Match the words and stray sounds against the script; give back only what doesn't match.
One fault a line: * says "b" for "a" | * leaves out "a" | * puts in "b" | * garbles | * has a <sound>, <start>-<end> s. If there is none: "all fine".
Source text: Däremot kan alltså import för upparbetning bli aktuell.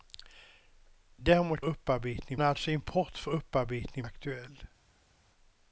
* says "upparbetning" for "kan"
* leaves out "bli"